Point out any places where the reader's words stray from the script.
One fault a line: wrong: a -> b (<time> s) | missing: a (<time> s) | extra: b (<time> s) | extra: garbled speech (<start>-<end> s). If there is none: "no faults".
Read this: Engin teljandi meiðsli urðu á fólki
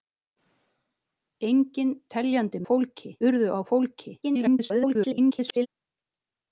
wrong: meiðsli -> fólki (2.7 s)
extra: garbled speech (4.2-5.7 s)